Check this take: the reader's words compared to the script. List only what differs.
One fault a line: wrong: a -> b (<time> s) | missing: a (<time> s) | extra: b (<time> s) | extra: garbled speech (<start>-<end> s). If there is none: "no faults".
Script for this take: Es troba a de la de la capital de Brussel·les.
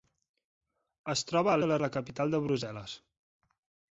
no faults